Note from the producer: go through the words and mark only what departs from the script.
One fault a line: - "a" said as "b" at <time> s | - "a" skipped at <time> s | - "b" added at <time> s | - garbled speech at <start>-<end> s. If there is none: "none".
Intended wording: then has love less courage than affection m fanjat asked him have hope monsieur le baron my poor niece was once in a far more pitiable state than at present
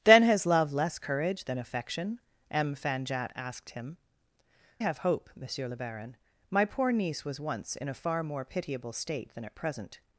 none